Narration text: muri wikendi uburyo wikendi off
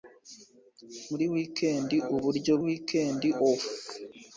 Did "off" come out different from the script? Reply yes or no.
no